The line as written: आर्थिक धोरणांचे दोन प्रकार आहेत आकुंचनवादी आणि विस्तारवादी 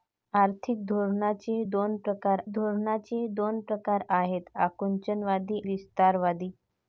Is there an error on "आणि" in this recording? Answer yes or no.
yes